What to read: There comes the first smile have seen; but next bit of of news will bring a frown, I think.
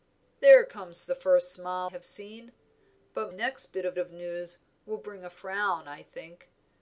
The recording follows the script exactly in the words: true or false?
true